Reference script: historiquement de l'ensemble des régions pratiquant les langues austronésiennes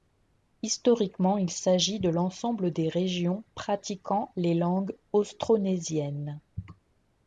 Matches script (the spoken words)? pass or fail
fail